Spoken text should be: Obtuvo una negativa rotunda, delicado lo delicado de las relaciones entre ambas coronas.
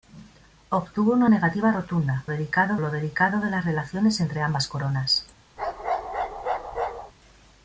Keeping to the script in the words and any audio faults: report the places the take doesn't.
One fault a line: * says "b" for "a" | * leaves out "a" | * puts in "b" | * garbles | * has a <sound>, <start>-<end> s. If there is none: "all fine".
* has a bark, 5.6-7.1 s